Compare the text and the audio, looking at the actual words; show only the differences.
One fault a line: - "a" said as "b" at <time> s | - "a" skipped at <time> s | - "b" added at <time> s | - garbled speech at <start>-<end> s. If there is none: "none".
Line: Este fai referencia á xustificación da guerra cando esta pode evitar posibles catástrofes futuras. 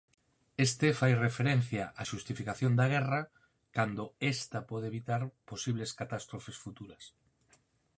none